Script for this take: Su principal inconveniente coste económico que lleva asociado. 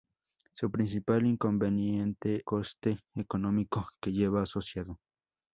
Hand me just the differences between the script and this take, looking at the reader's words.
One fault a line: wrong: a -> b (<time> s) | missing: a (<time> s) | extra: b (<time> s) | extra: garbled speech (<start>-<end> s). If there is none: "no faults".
no faults